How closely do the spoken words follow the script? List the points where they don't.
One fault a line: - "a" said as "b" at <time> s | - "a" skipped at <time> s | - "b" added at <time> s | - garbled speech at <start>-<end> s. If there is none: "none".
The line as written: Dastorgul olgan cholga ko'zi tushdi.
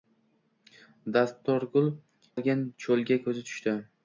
none